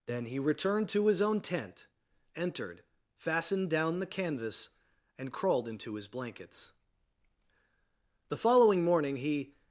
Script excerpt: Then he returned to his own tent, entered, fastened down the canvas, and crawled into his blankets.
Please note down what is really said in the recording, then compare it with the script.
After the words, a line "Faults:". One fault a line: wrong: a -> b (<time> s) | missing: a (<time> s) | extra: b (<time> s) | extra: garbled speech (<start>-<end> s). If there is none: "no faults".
Then he returned to his own tent, entered, fastened down the canvas, and crawled into his blankets. The following morning he
Faults:
extra: The following morning he (8.3 s)